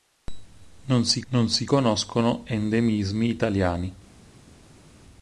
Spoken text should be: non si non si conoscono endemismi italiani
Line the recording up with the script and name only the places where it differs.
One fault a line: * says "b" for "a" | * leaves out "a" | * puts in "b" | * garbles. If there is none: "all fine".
all fine